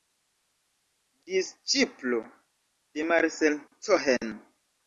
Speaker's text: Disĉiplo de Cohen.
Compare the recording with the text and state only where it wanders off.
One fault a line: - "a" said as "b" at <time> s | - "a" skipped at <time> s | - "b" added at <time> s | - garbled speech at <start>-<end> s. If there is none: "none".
- "Marcel" added at 3.1 s